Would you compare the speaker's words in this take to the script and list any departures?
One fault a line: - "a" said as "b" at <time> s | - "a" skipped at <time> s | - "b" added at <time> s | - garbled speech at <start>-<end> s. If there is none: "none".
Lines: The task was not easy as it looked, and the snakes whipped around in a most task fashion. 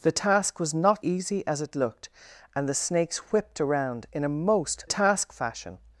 none